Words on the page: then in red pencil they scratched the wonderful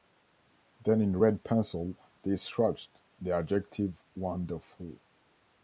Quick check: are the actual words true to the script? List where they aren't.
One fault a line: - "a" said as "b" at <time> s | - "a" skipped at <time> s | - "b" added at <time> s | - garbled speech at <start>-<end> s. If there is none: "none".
- "adjective" added at 3.3 s